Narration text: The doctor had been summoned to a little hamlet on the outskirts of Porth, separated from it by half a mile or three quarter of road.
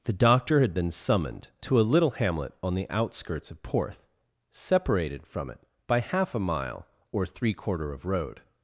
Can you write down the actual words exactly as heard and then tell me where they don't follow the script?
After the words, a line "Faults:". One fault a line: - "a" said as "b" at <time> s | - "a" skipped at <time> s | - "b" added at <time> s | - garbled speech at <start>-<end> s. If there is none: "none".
The doctor had been summoned to a little hamlet on the outskirts of Porth, separated from it by half a mile or three quarter of road.
Faults:
none